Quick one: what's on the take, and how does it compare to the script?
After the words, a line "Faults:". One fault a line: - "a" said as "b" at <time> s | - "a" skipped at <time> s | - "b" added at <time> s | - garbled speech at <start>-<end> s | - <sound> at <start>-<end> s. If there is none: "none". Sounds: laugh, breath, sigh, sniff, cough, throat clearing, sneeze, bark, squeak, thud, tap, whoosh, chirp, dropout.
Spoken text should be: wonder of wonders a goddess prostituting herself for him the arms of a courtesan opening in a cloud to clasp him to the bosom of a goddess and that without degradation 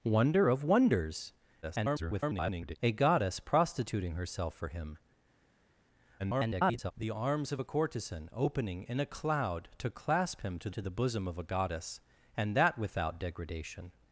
wonder of wonders [garbled] a goddess prostituting herself for him [garbled] the arms of a courtesan opening in a cloud to clasp him to to the bosom of a goddess and that without degradation
Faults:
- garbled speech at 1.6-2.8 s
- garbled speech at 6.2-6.9 s
- "to" added at 10.7 s